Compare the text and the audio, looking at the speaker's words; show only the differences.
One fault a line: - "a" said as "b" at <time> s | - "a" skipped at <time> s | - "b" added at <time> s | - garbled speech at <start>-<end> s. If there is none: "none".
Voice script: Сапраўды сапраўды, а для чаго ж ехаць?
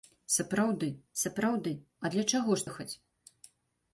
none